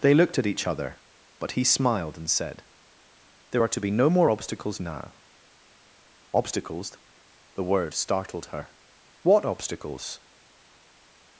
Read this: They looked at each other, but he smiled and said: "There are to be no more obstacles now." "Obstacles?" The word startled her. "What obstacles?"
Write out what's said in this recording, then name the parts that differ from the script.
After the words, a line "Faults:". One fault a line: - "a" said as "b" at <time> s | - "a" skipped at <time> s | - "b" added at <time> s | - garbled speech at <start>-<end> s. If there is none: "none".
They looked at each other, but he smiled and said: "There are to be no more obstacles now." "Obstacles?" The word startled her. "What obstacles?"
Faults:
none